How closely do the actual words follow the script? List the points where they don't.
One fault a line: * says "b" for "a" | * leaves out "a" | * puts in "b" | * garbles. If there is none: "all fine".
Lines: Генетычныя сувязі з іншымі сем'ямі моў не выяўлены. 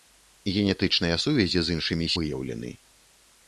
* leaves out "сем'ямі моў не"